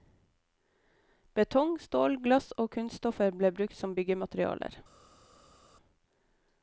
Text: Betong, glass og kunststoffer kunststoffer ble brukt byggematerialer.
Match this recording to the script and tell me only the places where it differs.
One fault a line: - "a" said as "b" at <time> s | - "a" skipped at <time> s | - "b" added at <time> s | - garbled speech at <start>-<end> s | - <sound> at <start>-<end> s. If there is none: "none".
- "stål" added at 1.8 s
- "kunststoffer" skipped at 3.4 s
- "som" added at 3.8 s